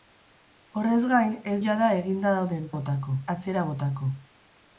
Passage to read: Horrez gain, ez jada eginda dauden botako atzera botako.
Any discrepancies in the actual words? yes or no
no